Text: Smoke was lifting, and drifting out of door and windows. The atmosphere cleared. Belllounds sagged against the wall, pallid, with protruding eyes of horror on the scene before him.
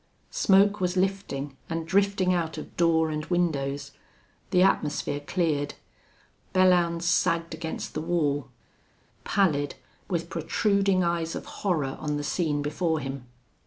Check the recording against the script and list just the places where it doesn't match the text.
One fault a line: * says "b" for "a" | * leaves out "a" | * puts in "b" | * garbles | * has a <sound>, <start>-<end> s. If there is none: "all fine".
all fine